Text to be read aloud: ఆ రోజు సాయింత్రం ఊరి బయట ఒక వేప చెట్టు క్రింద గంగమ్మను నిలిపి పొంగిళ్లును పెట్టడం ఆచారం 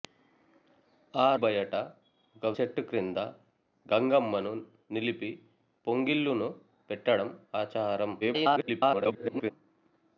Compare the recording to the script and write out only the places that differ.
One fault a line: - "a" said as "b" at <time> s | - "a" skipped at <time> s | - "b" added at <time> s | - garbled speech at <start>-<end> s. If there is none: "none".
- "రోజు సాయింత్రం ఊరి" skipped at 1.4 s
- "వేప" skipped at 2.5 s
- garbled speech at 8.2-9.5 s